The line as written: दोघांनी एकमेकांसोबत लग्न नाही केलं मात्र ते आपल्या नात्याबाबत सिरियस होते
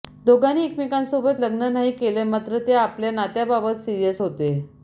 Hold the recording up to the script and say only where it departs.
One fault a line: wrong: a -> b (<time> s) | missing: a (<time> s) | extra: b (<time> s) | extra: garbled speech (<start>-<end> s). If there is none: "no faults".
no faults